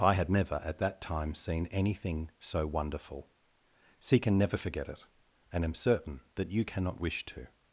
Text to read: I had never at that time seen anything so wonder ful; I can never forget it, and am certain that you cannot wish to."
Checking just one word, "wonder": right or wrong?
wrong